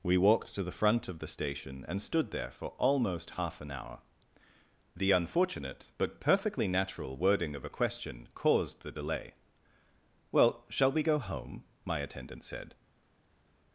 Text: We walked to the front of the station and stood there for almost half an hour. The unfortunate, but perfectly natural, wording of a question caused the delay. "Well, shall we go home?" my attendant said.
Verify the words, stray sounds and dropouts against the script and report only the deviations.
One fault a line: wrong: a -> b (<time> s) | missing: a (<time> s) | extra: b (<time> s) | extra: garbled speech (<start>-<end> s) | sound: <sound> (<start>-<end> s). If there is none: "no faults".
no faults